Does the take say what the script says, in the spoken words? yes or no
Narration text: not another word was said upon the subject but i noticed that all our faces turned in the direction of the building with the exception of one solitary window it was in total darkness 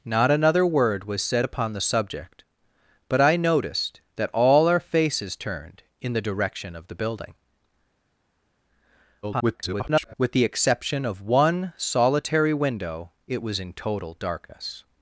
no